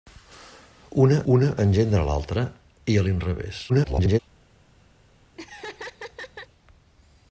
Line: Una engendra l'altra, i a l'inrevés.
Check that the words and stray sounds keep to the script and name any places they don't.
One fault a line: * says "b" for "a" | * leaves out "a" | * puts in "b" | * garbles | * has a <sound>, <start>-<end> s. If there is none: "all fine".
* puts in "una"
* garbles
* has a laugh, 5.4-6.5 s